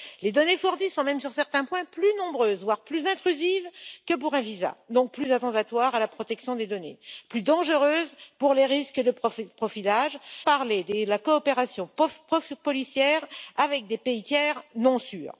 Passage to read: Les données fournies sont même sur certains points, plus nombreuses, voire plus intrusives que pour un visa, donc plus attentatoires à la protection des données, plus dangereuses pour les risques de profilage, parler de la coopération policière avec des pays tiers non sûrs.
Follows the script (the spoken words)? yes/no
yes